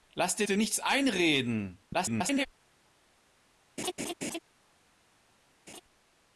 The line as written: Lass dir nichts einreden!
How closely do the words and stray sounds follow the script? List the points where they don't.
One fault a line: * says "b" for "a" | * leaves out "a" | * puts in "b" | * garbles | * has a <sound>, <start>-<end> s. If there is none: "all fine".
* puts in "dir"
* garbles
* has a laugh, 3.8-4.4 s
* has a laugh, 5.7-5.8 s